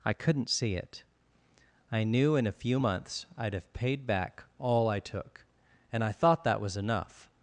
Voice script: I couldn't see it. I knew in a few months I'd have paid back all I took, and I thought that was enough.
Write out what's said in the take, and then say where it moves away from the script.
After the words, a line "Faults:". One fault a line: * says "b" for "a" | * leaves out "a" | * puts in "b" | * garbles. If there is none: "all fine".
I couldn't see it. I knew in a few months I'd have paid back all I took, and I thought that was enough.
Faults:
all fine